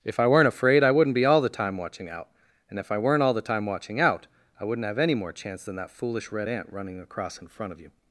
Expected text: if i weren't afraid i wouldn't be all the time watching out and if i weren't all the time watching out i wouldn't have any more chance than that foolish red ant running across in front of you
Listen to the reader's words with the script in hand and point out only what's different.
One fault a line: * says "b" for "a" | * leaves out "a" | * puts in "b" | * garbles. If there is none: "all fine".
all fine